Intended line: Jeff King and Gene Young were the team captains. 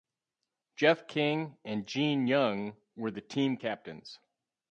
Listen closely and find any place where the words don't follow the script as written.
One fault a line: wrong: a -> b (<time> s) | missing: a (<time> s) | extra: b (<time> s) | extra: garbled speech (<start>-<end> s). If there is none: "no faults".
no faults